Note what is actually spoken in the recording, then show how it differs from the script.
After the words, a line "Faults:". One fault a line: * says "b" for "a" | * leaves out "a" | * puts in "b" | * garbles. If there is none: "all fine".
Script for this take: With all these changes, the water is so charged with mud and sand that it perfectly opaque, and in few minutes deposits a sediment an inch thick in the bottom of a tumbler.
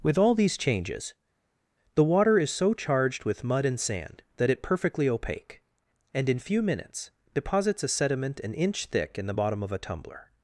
With all these changes, the water is so charged with mud and sand that it perfectly opaque, and in few minutes deposits a sediment an inch thick in the bottom of a tumbler.
Faults:
all fine